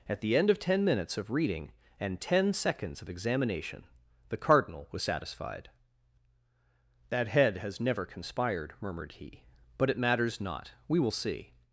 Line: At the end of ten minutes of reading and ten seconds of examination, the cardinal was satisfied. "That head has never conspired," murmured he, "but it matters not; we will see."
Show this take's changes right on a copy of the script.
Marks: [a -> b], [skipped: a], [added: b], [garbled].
At the end of ten minutes of reading and ten seconds of examination, the cardinal was satisfied. "That head has never conspired," murmured he, "but it matters not; we will see."